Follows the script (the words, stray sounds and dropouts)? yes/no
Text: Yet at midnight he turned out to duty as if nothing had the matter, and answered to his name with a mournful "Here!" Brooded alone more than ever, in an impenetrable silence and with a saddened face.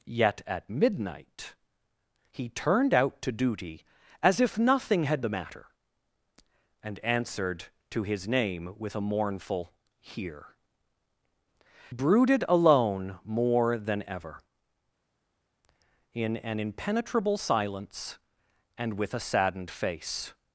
yes